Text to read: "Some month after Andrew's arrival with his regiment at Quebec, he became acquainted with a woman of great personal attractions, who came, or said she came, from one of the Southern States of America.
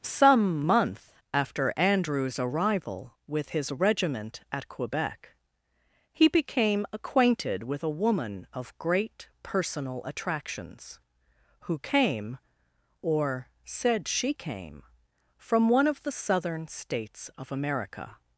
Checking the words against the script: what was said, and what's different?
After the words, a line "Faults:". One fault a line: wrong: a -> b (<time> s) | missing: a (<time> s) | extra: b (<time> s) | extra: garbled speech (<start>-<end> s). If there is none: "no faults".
"Some month after Andrew's arrival with his regiment at Quebec, he became acquainted with a woman of great personal attractions, who came, or said she came, from one of the Southern States of America.
Faults:
no faults